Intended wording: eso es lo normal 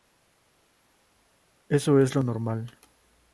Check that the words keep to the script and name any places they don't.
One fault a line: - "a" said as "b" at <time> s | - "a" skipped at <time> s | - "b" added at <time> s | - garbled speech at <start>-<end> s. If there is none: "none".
none